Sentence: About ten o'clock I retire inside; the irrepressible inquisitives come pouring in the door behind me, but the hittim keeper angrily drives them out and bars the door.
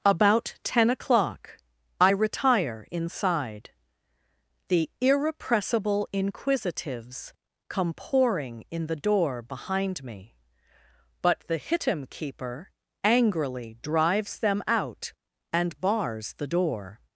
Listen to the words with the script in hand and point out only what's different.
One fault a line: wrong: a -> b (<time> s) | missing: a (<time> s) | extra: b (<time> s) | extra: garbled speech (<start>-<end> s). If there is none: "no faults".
no faults